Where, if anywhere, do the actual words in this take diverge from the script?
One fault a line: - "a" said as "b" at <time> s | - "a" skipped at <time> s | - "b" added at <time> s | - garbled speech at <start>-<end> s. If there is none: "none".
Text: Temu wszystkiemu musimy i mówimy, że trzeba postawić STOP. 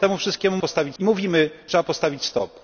- "musimy" said as "postawić" at 0.6 s
- "że" skipped at 1.5 s